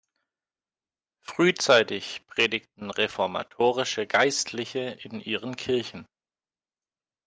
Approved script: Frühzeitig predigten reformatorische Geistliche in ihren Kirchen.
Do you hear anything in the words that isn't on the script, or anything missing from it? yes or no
no